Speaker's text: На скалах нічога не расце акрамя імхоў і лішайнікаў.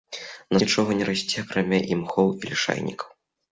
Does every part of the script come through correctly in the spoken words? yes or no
no